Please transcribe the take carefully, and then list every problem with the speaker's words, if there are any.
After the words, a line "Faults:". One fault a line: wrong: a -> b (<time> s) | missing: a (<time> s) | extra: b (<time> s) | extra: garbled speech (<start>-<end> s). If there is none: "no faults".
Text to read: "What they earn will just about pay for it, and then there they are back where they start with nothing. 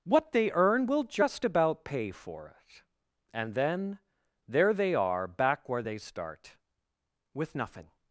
"What they earn will just about pay for it, and then there they are back where they start with nothing.
Faults:
no faults